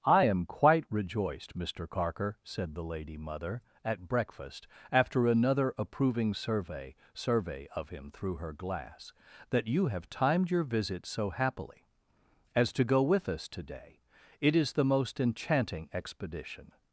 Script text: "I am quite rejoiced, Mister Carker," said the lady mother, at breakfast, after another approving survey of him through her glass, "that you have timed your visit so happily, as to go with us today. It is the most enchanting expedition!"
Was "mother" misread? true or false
false